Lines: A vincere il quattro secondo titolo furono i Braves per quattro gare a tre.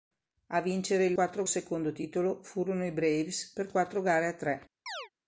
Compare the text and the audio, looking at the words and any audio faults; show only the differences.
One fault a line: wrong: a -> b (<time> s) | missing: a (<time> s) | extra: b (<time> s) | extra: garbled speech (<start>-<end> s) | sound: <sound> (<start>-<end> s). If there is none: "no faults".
sound: chirp (4.9-5.1 s)